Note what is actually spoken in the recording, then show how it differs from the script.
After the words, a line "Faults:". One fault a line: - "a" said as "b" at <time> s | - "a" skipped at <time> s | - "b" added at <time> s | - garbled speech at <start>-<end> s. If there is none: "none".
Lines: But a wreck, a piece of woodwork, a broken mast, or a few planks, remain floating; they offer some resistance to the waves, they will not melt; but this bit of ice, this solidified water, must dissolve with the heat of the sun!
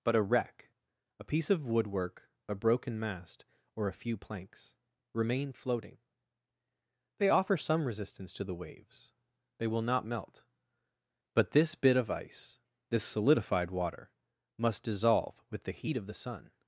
But a wreck, a piece of woodwork, a broken mast, or a few planks, remain floating; they offer some resistance to the waves, they will not melt; but this bit of ice, this solidified water, must dissolve with the heat of the sun!
Faults:
none